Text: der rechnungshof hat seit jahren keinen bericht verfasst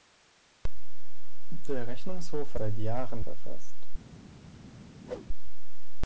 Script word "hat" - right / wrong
wrong